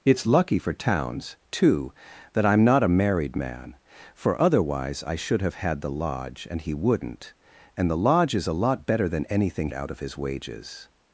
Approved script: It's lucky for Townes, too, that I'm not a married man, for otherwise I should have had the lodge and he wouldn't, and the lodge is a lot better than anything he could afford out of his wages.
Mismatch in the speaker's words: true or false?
true